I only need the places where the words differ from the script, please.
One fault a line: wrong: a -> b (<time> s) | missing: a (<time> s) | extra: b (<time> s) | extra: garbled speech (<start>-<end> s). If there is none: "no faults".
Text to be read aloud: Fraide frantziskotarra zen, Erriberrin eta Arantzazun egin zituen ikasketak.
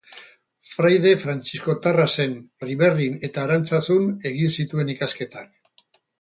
no faults